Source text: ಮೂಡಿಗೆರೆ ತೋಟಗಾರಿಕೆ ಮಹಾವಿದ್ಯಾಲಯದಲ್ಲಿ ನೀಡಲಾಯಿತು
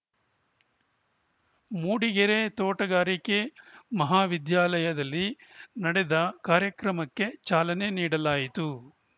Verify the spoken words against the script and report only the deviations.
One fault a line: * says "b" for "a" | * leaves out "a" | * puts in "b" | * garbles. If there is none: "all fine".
* puts in "ನಡೆದ ಕಾರ್ಯಕ್ರಮಕ್ಕೆ ಚಾಲನೆ"